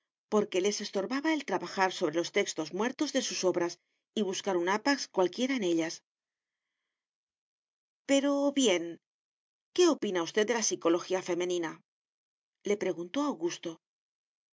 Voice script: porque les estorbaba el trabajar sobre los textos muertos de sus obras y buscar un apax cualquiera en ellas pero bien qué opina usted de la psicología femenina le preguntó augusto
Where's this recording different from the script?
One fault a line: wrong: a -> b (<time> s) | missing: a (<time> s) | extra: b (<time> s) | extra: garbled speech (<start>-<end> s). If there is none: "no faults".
no faults